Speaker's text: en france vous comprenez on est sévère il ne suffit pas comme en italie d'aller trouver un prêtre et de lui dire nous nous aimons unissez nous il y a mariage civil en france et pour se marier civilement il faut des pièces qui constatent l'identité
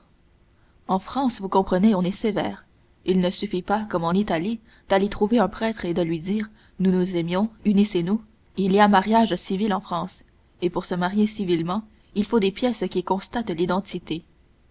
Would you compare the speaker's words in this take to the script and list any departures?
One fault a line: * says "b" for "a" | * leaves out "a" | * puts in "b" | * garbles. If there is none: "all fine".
all fine